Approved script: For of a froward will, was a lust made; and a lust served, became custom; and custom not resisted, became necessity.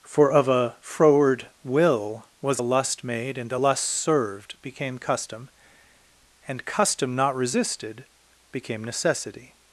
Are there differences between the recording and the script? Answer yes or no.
no